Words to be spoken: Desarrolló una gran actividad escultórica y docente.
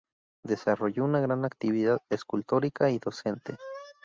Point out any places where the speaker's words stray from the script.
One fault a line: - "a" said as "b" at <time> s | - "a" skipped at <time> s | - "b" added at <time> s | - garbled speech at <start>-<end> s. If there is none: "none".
none